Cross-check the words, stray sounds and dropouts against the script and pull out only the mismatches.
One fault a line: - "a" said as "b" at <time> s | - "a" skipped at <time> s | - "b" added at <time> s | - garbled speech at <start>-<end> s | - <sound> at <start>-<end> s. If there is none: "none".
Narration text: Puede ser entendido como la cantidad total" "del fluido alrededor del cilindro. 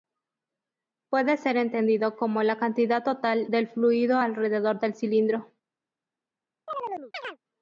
- chirp at 6.7-7.4 s